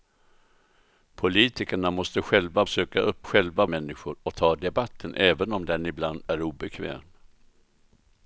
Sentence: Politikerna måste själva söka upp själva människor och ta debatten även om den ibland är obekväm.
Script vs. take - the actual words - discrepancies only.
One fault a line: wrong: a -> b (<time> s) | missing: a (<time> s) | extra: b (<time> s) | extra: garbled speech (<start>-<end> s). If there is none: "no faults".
no faults